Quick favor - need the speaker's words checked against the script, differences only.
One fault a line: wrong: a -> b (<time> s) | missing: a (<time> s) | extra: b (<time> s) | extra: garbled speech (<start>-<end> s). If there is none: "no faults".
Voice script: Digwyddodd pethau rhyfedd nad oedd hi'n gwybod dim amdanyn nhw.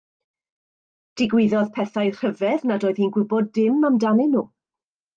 no faults